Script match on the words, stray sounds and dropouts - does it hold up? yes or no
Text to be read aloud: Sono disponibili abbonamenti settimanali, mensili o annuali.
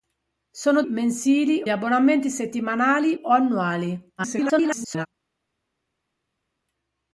no